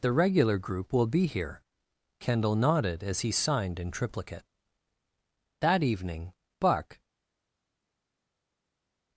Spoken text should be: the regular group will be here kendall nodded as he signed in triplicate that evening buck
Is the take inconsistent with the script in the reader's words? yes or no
no